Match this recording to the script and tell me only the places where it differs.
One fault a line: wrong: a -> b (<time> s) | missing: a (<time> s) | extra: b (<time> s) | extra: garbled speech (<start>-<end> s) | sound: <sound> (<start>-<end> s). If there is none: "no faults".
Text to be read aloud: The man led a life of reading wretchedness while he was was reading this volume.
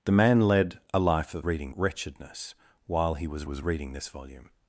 no faults